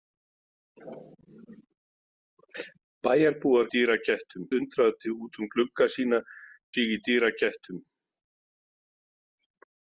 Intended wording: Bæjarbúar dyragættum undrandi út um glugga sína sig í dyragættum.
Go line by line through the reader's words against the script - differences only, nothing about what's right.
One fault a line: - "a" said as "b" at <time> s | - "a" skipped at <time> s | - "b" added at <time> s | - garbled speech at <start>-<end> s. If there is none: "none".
none